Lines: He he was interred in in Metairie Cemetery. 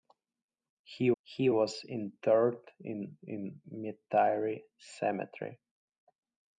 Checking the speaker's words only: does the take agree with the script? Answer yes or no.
yes